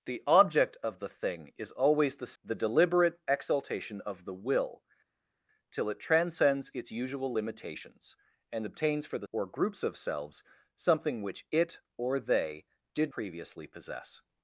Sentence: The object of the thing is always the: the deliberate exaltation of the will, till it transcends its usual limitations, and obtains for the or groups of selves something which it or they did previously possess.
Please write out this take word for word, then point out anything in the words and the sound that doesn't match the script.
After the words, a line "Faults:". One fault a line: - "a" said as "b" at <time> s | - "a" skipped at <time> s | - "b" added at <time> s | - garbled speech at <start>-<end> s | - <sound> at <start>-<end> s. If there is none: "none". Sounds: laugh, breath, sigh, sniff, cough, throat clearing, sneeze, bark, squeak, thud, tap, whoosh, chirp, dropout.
The object of the thing is always the: the deliberate exaltation of the will, till it transcends its usual limitations, and obtains for the or groups of selves something which it or they did previously possess.
Faults:
none